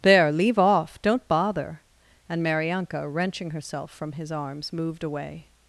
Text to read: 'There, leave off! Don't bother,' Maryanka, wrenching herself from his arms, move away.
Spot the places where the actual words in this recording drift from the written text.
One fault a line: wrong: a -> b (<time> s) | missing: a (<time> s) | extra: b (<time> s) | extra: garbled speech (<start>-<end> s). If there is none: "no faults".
extra: and (2.3 s)
wrong: move -> moved (4.7 s)